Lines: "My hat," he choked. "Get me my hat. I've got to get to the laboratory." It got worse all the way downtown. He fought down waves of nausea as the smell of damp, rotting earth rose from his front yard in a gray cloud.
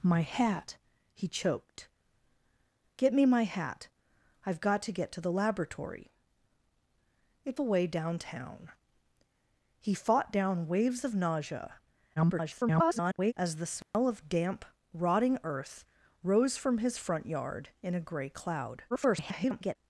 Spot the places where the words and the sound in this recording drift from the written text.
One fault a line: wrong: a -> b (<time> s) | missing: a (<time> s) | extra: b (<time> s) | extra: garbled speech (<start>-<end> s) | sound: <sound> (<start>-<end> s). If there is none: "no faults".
missing: got worse all (7.6 s)
extra: garbled speech (12.2-13.3 s)
sound: dropout (13.8-13.9 s)
extra: garbled speech (18.9-19.8 s)